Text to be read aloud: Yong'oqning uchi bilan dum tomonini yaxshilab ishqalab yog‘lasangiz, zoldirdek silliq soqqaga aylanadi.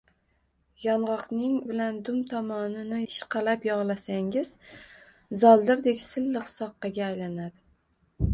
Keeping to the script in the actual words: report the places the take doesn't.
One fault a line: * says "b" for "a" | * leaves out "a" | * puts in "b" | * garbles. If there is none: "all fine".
* leaves out "uchi"
* leaves out "yaxshilab"